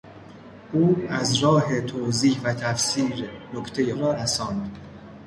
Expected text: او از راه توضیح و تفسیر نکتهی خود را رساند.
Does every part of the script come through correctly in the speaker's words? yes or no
no